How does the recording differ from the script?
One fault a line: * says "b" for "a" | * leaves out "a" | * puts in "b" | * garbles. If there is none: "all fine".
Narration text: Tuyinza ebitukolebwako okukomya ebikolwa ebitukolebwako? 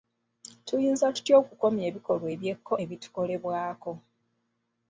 * says "tutya" for "ebitukolebwako"
* puts in "eby'ekko"